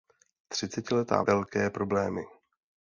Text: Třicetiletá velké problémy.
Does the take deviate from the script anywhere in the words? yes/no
no